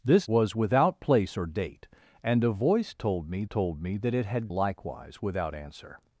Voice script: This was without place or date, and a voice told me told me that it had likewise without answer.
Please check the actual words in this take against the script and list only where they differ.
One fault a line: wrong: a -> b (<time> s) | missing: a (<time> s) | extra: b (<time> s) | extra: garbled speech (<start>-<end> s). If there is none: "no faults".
no faults